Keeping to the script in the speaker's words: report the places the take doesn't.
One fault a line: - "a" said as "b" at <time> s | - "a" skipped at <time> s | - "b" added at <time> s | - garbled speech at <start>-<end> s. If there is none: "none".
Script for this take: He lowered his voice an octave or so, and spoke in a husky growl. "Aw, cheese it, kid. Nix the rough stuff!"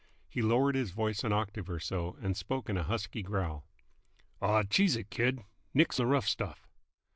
none